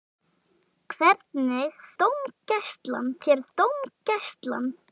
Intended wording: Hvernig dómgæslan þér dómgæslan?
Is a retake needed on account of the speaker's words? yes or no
no